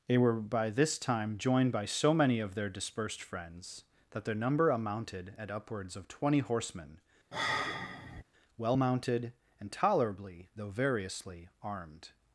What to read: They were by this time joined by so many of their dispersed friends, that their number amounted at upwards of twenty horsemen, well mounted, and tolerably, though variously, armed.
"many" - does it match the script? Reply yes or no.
yes